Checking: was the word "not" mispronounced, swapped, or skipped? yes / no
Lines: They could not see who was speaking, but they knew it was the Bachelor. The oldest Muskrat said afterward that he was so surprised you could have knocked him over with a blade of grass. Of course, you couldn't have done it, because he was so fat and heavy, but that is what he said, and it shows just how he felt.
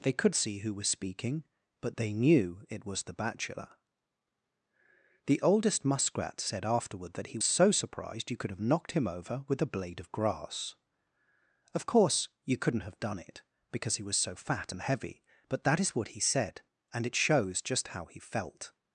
yes